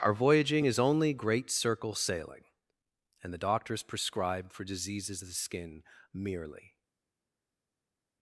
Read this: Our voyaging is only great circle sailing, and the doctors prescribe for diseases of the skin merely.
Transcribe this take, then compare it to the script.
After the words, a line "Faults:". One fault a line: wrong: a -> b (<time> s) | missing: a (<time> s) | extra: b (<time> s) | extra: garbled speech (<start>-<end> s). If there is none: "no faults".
Our voyaging is only great circle sailing, and the doctors prescribe for diseases of the skin merely.
Faults:
no faults